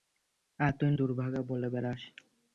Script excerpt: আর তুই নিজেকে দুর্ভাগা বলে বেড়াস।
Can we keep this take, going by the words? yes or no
no